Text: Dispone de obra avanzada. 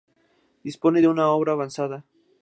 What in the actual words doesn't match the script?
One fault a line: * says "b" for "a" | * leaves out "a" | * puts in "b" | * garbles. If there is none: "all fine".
* puts in "una"